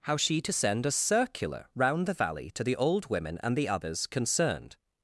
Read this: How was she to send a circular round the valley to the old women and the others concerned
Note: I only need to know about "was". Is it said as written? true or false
false